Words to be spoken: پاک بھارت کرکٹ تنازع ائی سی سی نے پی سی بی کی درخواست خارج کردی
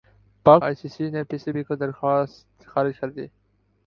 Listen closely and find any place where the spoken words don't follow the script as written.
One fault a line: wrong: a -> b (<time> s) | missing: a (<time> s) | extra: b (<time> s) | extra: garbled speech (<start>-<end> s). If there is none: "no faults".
missing: بھارت کرکٹ تنازع (0.6 s)